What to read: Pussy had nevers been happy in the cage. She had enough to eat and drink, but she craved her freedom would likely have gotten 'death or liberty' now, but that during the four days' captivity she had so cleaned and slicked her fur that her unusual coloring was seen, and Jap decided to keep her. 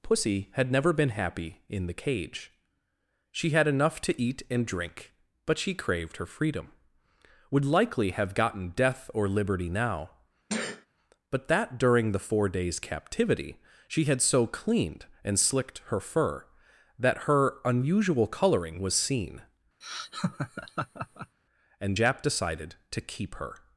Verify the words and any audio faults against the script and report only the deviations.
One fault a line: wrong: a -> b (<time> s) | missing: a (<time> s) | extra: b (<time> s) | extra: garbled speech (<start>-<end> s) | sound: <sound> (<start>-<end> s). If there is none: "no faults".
wrong: nevers -> never (0.7 s)
sound: sneeze (10.5-10.9 s)
sound: laugh (19.8-21.4 s)